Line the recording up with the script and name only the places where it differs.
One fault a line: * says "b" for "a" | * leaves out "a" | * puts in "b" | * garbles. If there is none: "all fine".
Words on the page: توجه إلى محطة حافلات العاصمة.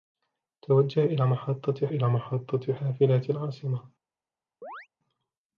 * puts in "إلى محطة"